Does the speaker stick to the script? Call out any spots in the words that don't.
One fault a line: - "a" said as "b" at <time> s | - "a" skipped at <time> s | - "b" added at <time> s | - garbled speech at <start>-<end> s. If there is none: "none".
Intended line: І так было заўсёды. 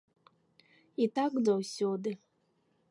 - "было" skipped at 1.3 s